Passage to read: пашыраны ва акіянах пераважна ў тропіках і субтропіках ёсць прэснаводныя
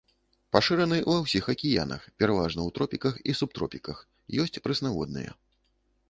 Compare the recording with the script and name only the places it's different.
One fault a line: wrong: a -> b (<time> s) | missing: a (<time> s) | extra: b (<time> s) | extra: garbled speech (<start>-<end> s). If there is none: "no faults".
extra: ўсіх (1.2 s)